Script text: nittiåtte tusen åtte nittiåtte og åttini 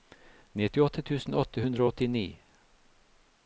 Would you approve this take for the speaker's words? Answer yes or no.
no